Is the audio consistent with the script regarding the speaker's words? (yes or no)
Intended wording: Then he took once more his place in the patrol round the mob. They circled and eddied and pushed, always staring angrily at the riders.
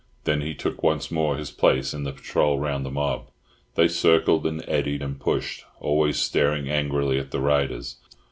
yes